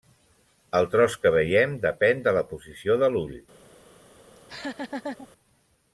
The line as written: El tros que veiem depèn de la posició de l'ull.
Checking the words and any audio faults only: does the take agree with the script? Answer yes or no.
no